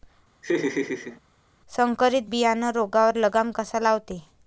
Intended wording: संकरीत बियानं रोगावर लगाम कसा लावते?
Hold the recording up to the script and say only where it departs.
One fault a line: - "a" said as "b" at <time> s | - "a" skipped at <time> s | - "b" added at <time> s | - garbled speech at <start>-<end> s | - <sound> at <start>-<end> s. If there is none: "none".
- laugh at 0.4-1.2 s